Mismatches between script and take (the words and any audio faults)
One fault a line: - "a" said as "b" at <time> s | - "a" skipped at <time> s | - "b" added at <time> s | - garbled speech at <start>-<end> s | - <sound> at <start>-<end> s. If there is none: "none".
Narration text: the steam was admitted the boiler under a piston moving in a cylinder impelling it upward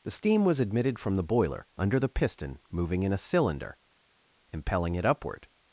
- "from" added at 1.0 s
- "a" said as "the" at 2.0 s